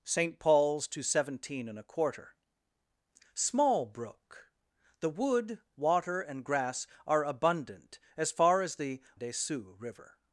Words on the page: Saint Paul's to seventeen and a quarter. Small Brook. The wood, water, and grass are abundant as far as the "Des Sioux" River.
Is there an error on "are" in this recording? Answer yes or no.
no